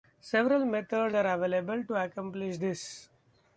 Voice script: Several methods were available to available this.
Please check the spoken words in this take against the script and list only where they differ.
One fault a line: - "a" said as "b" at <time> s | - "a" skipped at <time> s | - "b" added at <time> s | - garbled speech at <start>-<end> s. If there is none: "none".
- "were" said as "are" at 1.2 s
- "available" said as "accomplish" at 2.0 s